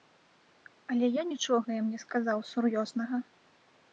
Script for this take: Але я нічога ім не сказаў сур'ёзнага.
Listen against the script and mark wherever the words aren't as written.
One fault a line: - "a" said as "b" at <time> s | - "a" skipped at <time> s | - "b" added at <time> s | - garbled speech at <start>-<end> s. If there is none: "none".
none